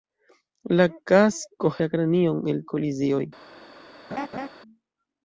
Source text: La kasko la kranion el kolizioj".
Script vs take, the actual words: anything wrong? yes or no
no